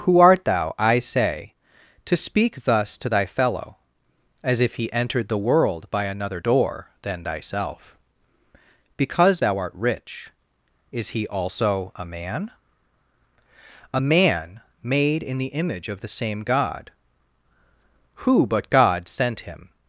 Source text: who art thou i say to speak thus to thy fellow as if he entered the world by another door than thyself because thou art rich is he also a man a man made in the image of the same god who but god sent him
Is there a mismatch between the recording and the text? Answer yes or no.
no